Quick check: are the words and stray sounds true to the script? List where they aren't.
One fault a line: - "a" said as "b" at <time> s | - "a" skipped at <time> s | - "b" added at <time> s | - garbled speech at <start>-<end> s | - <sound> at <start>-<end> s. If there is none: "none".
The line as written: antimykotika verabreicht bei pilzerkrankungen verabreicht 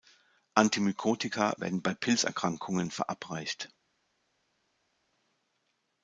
- "verabreicht" said as "werden" at 1.6 s